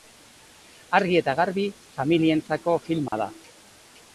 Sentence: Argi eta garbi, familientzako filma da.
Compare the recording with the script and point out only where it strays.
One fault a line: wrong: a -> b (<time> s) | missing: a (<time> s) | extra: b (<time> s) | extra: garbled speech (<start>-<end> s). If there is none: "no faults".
no faults